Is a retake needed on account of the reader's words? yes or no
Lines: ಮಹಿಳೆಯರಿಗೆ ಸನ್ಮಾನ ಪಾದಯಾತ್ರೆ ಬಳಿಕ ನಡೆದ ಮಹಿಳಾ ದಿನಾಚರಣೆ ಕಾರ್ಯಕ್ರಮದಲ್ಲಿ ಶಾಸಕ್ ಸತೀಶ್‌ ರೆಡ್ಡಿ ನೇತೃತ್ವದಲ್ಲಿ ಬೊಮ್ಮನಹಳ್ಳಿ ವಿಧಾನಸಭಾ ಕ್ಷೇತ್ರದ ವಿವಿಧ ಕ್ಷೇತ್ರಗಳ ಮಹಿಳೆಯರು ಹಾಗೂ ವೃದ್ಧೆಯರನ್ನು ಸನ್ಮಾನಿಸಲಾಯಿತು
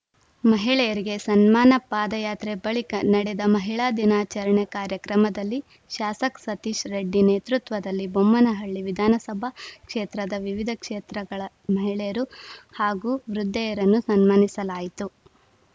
no